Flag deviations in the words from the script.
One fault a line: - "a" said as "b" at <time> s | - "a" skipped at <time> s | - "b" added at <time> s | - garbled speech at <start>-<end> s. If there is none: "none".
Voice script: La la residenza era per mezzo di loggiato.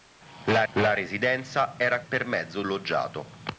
none